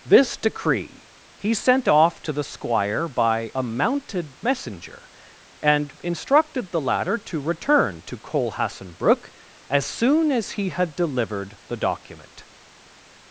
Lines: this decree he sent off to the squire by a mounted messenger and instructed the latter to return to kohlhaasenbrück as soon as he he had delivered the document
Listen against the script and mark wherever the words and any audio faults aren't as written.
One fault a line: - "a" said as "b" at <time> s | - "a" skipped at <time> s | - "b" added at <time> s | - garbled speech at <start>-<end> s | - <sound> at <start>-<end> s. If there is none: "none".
- "he" skipped at 10.7 s